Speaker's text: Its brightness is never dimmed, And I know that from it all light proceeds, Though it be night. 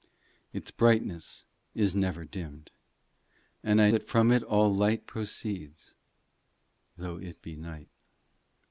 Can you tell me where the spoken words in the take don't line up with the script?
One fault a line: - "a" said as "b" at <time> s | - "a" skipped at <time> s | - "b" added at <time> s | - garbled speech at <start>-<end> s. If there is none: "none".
- "know" skipped at 3.9 s